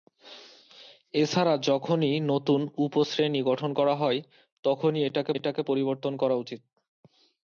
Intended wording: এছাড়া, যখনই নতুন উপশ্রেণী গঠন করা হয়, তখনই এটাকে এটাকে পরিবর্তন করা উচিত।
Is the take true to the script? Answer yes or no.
yes